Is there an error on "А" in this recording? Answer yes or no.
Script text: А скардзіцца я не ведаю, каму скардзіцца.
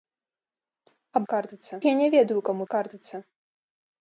no